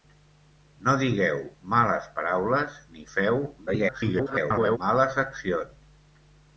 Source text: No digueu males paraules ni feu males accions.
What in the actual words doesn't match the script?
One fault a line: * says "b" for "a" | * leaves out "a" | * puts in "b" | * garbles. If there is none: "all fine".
* garbles